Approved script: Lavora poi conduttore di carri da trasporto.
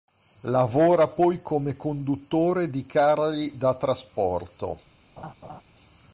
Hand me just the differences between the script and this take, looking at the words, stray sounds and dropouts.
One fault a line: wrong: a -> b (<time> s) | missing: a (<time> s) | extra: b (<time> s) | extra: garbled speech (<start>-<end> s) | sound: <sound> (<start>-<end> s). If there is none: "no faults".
extra: come (1.4 s)
sound: laugh (5.2-5.6 s)